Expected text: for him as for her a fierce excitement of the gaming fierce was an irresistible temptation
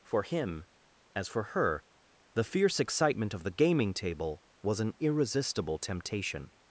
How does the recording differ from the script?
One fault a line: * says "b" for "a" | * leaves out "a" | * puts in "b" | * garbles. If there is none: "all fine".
* says "the" for "a"
* says "table" for "fierce"